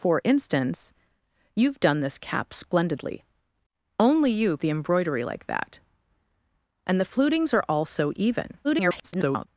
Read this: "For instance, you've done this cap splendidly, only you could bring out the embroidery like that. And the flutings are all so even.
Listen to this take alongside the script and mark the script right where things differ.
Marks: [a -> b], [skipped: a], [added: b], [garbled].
"For instance, you've done this cap splendidly, only you [skipped: could bring out] the embroidery like that. And the flutings are all so even. [garbled]